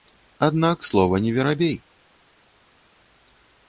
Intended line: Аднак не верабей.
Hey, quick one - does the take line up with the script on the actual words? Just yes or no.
no